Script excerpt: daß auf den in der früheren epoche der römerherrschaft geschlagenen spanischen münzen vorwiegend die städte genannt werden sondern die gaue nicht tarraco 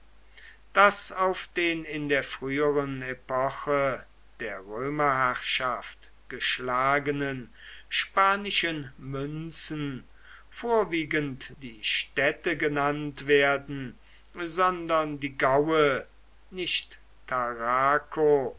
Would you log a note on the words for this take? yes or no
no